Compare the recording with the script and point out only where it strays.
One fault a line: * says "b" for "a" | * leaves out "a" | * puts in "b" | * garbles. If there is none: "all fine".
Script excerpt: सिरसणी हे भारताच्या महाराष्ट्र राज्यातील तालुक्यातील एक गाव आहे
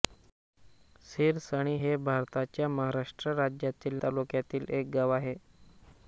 all fine